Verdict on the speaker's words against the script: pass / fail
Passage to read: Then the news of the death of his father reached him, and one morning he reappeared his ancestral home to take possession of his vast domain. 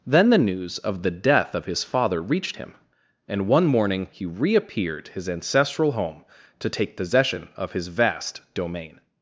pass